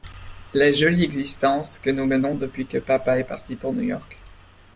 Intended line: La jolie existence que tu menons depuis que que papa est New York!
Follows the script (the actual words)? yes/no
no